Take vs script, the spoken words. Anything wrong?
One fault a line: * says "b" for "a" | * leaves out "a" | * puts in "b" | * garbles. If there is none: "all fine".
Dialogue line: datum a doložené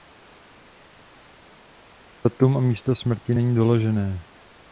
* puts in "místo smrti není"